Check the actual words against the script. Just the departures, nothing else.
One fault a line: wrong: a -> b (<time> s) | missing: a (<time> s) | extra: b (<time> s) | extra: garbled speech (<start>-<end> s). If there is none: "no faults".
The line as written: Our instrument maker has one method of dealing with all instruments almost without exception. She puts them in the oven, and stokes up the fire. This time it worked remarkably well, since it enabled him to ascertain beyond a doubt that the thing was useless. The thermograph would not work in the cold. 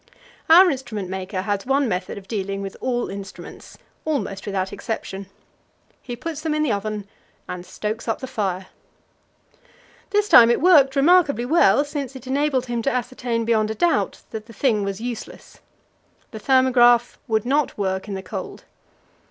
wrong: She -> He (6.0 s)